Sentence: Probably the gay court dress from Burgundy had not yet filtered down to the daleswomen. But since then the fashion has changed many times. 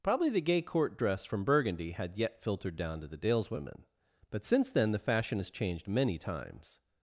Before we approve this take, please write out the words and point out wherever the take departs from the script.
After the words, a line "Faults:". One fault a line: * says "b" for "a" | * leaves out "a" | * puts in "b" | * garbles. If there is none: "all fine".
Probably the gay court dress from Burgundy had yet filtered down to the daleswomen. But since then the fashion has changed many times.
Faults:
* leaves out "not"